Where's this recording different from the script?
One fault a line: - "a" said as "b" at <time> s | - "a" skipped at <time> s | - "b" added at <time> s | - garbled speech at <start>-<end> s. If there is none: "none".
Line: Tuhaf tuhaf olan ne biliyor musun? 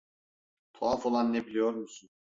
- "tuhaf" skipped at 1.1 s